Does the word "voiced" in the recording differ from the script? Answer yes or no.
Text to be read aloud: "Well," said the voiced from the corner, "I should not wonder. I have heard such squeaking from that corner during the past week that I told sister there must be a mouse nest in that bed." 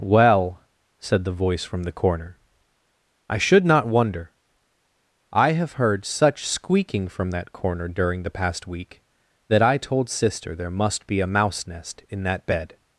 yes